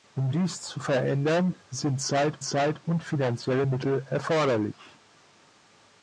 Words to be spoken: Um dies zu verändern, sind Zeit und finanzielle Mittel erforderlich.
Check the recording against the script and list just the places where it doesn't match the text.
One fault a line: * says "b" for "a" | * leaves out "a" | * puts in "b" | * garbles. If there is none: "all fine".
* puts in "Zeit"